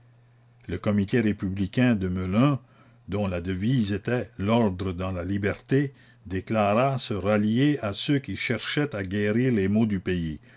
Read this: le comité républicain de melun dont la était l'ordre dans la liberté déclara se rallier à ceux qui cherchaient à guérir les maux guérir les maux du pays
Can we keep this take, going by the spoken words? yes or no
no